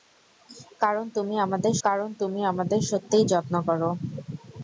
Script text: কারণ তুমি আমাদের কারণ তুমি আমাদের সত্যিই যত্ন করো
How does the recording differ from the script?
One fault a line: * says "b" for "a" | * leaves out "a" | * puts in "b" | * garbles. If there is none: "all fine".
all fine